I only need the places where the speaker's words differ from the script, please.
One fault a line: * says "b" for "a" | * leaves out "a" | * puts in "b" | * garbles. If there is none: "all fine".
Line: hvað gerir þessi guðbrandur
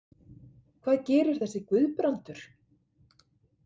all fine